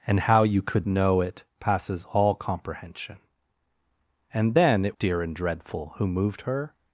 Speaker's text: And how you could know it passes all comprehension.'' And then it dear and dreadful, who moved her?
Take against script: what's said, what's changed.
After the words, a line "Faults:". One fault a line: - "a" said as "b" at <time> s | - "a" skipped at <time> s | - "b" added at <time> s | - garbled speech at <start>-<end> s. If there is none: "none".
And how you could know it passes all comprehension.'' And then it dear and dreadful, who moved her?
Faults:
none